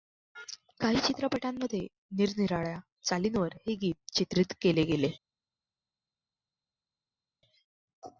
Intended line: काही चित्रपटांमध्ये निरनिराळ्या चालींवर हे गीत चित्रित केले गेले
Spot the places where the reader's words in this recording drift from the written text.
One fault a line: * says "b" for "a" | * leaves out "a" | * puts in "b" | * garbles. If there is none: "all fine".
all fine